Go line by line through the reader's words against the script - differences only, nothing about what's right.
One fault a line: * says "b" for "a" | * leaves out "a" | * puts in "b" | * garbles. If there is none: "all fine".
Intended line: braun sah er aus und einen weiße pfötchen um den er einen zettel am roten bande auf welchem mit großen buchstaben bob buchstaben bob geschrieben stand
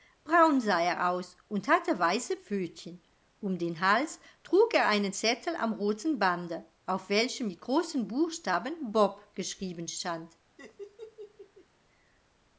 * says "hatte" for "einen"
* puts in "hals trug"
* leaves out "buchstaben bob"